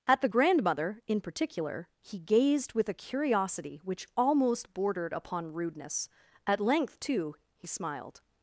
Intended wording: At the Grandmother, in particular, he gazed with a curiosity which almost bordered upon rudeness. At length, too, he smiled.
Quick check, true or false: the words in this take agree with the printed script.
true